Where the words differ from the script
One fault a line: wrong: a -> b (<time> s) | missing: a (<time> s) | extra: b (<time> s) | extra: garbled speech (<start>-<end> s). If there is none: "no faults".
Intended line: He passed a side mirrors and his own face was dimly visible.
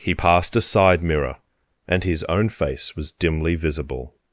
wrong: mirrors -> mirror (1.0 s)